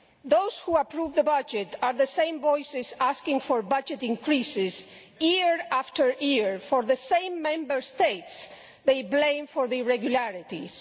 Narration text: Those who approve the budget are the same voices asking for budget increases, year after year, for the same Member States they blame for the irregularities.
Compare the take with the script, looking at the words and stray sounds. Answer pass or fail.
pass